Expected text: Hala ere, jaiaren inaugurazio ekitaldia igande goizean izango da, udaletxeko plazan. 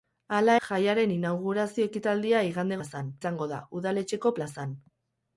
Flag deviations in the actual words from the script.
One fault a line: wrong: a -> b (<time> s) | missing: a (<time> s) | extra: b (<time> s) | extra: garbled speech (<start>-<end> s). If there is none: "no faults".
missing: ere (0.5 s)
wrong: goizean -> plazan (2.8 s)